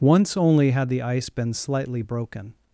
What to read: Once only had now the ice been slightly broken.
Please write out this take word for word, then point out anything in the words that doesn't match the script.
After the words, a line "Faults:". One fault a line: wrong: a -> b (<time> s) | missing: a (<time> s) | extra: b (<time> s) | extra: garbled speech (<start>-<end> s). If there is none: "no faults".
Once only had the ice been slightly broken.
Faults:
missing: now (0.9 s)